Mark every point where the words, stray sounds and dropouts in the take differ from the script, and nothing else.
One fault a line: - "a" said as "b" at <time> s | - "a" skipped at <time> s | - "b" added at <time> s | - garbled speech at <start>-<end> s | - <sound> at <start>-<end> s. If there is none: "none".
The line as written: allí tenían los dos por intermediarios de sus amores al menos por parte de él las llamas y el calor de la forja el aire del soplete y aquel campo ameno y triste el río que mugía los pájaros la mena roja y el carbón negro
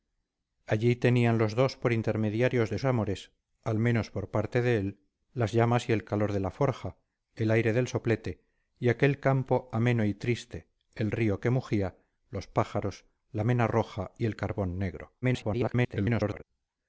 - "sus" skipped at 2.8 s
- garbled speech at 15.2-16.4 s